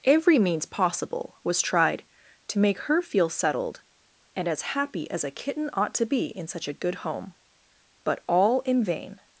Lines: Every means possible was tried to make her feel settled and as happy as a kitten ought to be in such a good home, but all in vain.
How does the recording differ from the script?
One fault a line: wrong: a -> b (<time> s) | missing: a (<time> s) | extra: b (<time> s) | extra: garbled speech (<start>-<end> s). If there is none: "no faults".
no faults